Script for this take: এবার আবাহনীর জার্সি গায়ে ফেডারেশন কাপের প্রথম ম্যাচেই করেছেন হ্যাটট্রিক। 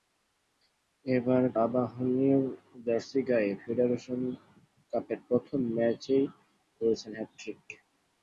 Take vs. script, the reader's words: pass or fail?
pass